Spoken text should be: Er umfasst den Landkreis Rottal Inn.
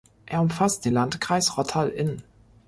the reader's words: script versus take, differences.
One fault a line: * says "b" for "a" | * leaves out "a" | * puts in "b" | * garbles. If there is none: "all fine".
all fine